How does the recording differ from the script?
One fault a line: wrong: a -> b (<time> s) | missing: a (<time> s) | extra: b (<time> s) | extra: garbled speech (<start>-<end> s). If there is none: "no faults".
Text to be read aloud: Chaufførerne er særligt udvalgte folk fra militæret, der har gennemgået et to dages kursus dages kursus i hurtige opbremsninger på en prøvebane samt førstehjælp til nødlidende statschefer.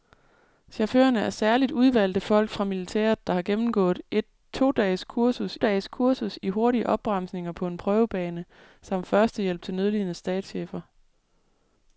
no faults